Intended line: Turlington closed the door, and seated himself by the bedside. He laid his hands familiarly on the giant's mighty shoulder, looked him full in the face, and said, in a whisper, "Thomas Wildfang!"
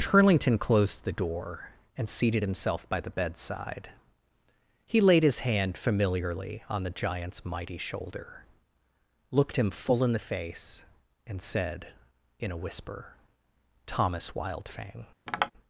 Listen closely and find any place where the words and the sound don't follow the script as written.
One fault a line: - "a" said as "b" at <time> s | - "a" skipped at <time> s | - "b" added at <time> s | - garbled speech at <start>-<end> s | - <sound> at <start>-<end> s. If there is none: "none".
- "hands" said as "hand" at 5.4 s
- tap at 15.3-15.5 s